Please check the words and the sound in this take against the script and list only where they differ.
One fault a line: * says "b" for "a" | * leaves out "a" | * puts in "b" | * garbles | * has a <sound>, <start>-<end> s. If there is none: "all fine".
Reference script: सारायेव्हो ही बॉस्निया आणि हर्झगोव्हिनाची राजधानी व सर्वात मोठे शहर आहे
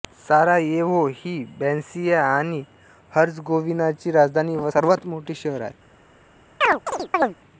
* has a chirp, 6.6-7.3 s